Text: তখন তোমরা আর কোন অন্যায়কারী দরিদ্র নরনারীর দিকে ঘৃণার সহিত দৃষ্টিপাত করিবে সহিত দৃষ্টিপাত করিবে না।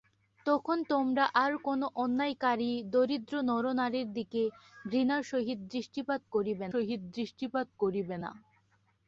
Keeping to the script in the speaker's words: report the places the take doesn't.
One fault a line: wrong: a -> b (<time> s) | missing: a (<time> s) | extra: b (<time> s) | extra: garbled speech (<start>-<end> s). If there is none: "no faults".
no faults